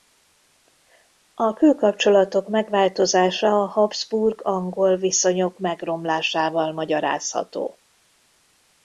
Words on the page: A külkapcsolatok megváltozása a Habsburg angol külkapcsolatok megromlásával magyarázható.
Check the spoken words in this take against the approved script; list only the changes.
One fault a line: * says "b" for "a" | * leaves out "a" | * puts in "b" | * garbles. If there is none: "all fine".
* says "viszonyok" for "külkapcsolatok"